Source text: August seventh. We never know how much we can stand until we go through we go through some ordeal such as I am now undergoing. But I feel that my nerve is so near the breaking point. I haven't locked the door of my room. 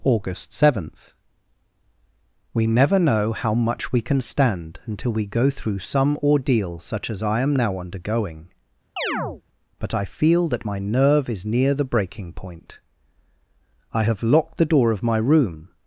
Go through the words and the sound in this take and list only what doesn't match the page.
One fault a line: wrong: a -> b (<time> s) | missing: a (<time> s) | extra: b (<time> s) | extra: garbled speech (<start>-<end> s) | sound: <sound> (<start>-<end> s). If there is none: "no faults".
missing: we go through (5.8 s)
sound: chirp (9.0-9.4 s)
missing: so (11.5 s)
wrong: haven't -> have (14.0 s)